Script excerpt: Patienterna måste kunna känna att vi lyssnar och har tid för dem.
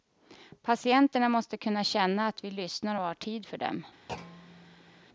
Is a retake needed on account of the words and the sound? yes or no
yes